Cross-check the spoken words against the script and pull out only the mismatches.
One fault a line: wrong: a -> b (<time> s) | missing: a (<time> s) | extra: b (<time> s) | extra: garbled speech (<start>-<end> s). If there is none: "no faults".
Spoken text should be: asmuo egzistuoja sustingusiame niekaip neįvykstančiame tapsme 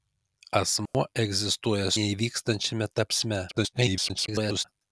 missing: sustingusiame niekaip (1.9 s)
extra: garbled speech (3.5-4.7 s)